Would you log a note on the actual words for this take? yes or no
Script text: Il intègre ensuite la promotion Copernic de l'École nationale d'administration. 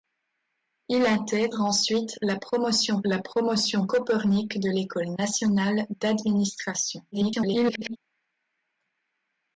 yes